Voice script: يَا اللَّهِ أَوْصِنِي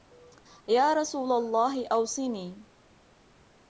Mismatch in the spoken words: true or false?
true